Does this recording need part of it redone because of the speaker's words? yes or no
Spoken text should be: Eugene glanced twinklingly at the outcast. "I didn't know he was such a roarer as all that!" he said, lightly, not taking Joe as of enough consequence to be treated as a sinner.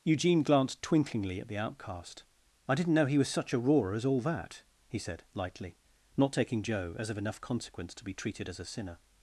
no